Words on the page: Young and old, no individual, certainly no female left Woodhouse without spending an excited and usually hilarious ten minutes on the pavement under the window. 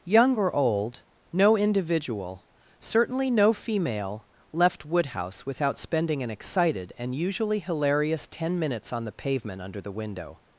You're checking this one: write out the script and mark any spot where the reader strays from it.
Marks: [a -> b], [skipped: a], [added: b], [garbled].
Young [and -> or] old, no individual, certainly no female left Woodhouse without spending an excited and usually hilarious ten minutes on the pavement under the window.